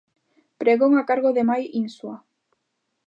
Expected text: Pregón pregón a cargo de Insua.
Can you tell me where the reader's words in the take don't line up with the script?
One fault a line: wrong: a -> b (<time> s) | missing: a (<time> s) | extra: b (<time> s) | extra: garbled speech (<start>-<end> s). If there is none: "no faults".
missing: pregón (0.9 s)
extra: Mai (1.5 s)